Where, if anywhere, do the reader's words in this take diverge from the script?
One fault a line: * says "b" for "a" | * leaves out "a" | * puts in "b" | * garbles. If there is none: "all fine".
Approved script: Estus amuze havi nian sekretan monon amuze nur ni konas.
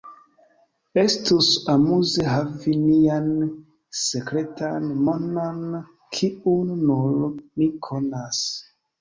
* says "kiun" for "amuze"